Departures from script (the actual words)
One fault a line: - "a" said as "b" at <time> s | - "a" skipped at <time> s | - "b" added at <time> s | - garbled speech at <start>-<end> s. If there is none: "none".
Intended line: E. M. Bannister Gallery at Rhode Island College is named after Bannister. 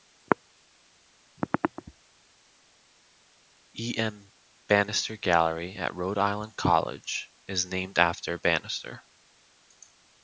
none